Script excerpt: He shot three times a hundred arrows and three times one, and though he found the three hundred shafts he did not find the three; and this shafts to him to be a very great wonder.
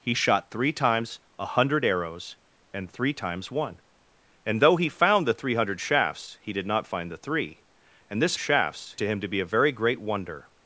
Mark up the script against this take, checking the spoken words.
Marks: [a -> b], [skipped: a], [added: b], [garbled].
He shot three times a hundred arrows and three times one, and though he found the three hundred shafts he did not find the three; and this shafts to him to be a very great wonder.